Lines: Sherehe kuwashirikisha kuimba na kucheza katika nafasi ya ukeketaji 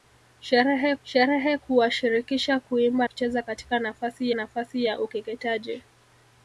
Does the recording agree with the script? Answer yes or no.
no